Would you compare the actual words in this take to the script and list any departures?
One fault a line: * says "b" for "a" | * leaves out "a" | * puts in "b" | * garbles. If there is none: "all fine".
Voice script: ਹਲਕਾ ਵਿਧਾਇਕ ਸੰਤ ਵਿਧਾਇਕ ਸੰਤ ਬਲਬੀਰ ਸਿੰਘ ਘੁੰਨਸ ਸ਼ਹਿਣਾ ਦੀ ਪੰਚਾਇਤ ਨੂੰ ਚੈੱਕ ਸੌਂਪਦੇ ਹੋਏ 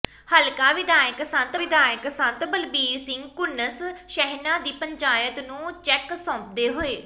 all fine